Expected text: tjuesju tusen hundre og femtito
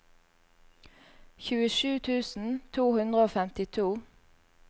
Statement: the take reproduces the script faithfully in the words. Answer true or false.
false